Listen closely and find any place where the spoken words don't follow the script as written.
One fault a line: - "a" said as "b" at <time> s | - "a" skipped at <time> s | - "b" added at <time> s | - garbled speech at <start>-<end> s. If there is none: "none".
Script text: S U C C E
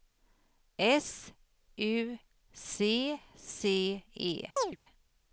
none